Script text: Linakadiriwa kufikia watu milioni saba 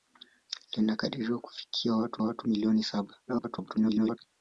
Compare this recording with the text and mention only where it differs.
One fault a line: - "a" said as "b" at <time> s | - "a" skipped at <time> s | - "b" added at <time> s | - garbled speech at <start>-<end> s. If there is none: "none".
- "watu" added at 2.2 s
- garbled speech at 3.3-4.2 s